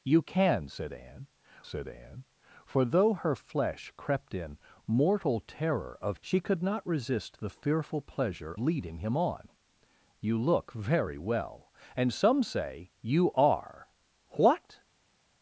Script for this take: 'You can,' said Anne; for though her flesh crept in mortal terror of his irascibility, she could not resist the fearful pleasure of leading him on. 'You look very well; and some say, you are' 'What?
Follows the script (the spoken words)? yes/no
no